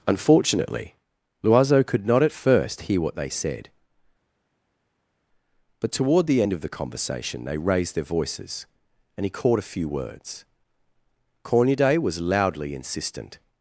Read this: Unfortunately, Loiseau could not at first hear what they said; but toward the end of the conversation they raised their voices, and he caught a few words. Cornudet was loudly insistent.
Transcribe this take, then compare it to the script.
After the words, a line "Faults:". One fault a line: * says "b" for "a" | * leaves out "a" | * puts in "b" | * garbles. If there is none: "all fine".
Unfortunately, Loiseau could not at first hear what they said; but toward the end of the conversation they raised their voices, and he caught a few words. Cornudet was loudly insistent.
Faults:
all fine